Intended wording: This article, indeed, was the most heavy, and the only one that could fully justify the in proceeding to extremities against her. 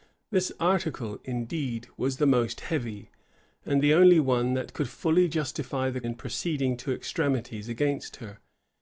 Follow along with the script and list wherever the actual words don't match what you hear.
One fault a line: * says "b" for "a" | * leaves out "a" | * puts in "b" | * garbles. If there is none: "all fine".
all fine